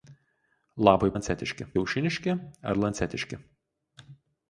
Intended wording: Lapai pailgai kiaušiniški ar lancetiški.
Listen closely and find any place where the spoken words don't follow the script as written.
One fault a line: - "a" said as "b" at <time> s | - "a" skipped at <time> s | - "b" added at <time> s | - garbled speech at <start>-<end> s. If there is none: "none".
- "pailgai" said as "lancetiški" at 1.1 s